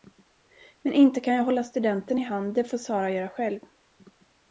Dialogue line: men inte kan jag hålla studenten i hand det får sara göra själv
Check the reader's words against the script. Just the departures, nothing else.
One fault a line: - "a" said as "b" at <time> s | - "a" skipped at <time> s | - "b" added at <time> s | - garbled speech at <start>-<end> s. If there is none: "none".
none